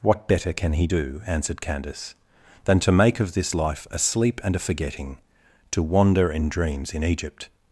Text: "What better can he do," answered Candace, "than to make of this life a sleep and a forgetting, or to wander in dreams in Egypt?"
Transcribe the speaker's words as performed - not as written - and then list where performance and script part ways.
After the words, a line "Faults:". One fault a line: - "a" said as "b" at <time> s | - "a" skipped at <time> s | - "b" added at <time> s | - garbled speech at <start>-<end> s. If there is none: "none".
"What better can he do," answered Candace, "than to make of this life a sleep and a forgetting, to wander in dreams in Egypt?"
Faults:
- "or" skipped at 5.2 s